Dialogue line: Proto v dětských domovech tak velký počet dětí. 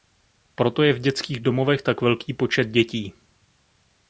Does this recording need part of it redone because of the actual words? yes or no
yes